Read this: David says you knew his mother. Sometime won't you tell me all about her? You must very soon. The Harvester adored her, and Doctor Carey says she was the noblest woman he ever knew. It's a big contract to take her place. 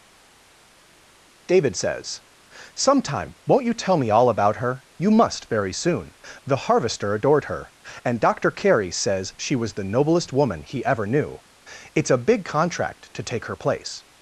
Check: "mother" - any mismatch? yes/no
yes